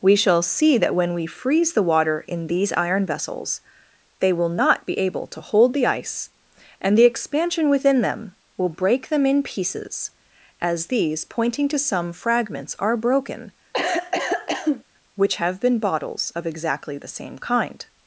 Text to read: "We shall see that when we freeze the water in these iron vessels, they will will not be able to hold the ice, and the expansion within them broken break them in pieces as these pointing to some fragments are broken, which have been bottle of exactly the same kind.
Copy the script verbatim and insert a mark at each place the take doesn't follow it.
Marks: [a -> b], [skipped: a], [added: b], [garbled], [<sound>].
"We shall see that when we freeze the water in these iron vessels, they will [skipped: will] not be able to hold the ice, and the expansion within them [broken -> will] break them in pieces as these pointing to some fragments are broken, [cough] which have been [bottle -> bottles] of exactly the same kind.